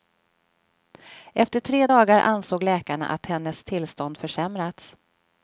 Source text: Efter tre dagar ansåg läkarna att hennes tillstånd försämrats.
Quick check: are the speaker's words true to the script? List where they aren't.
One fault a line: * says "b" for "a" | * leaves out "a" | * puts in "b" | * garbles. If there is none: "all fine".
all fine